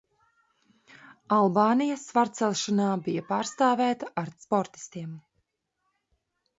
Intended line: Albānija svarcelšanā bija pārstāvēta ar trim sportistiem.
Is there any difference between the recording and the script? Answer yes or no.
yes